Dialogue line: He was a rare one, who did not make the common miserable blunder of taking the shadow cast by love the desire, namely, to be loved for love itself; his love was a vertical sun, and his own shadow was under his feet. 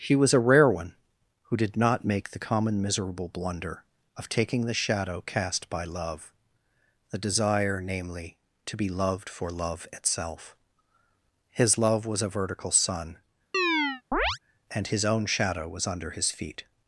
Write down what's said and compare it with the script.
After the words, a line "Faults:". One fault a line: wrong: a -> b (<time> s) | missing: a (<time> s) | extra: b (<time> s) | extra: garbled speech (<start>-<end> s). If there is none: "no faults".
He was a rare one, who did not make the common miserable blunder of taking the shadow cast by love the desire, namely, to be loved for love itself; his love was a vertical sun, and his own shadow was under his feet.
Faults:
no faults